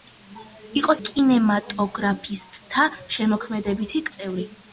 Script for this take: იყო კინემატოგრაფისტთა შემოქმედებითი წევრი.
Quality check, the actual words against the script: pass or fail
pass